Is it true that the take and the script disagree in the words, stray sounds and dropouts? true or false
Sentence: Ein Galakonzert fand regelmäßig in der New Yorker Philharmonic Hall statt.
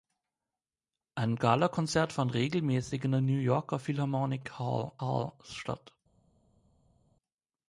true